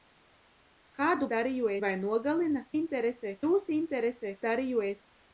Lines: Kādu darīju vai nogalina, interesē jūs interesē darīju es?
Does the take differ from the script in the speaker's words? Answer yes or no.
no